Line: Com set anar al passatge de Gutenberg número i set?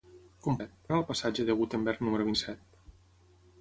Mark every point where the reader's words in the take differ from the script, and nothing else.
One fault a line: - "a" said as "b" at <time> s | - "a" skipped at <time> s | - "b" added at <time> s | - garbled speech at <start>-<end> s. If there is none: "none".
none